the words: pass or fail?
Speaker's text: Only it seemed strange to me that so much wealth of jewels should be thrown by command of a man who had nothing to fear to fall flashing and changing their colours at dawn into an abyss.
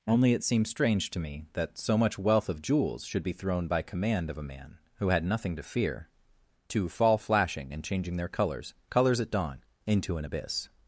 fail